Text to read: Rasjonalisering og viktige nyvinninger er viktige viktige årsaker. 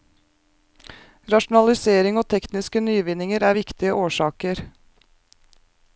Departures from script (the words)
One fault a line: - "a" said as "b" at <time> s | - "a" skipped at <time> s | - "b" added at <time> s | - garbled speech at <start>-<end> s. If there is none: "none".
- "viktige" said as "tekniske" at 2.3 s
- "viktige" skipped at 3.9 s